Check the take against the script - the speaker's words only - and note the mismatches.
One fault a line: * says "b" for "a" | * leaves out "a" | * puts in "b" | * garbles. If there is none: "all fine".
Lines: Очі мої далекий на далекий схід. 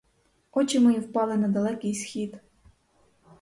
* says "впали" for "далекий"